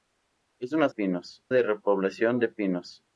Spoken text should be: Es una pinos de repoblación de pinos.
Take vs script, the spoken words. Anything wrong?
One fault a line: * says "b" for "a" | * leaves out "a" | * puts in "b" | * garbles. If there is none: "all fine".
all fine